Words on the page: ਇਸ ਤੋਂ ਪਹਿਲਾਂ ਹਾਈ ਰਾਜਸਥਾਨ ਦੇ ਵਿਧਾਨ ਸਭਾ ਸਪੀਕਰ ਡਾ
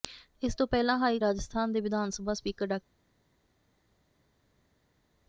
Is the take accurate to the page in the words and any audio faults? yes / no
yes